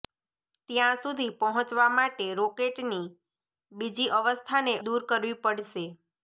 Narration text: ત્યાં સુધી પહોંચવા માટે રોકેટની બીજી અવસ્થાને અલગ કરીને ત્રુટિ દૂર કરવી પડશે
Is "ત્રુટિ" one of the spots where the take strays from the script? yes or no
yes